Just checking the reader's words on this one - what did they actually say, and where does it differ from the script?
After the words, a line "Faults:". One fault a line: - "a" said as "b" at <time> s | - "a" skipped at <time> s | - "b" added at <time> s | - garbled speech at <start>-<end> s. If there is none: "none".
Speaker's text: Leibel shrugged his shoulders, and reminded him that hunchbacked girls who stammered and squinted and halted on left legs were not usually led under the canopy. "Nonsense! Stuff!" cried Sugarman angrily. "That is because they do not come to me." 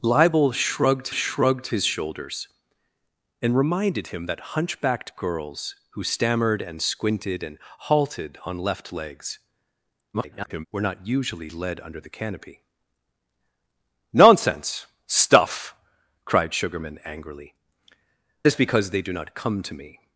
Leibel shrugged shrugged his shoulders, and reminded him that hunchbacked girls who stammered and squinted and halted on left legs [garbled] were not usually led under the canopy. "Nonsense! Stuff!" cried Sugarman angrily. "Is because they do not come to me."
Faults:
- "shrugged" added at 1.1 s
- garbled speech at 10.1-10.7 s
- "That" skipped at 17.5 s